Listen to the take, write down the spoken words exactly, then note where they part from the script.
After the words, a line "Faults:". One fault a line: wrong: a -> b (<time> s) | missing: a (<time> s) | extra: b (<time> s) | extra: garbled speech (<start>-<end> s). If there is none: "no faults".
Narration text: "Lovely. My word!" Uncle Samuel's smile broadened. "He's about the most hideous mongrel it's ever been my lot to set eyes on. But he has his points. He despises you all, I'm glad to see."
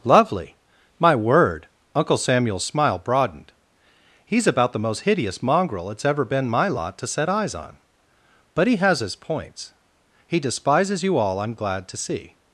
"Lovely. My word!" Uncle Samuel's smile broadened. "He's about the most hideous mongrel it's ever been my lot to set eyes on. But he has his points. He despises you all, I'm glad to see."
Faults:
no faults